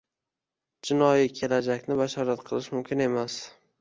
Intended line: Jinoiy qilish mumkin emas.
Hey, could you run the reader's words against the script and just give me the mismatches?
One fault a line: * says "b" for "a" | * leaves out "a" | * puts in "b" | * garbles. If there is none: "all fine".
* puts in "kelajakni bashorat"